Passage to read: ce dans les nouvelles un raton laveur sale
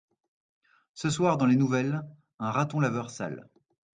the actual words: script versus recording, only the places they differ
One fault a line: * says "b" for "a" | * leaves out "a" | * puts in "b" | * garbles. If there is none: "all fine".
* puts in "soir"